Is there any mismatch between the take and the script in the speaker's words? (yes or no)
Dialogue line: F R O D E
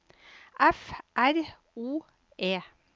yes